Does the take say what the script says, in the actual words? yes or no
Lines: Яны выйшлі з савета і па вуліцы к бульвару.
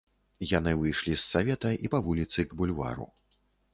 yes